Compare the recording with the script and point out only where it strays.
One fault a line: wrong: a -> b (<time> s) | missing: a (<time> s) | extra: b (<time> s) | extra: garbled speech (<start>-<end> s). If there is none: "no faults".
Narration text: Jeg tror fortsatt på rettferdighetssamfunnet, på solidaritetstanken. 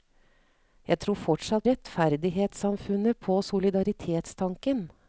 missing: på (1.6 s)